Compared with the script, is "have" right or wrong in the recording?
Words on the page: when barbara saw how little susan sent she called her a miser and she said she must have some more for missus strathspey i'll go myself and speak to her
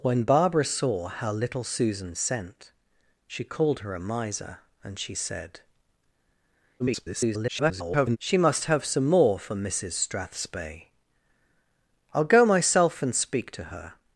right